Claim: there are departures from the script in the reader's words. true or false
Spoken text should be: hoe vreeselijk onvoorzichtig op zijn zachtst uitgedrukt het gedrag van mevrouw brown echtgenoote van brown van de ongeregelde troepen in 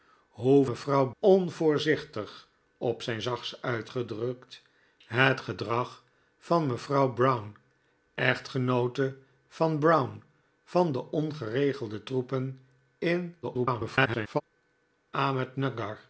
true